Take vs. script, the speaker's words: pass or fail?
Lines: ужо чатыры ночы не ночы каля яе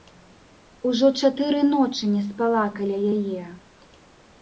fail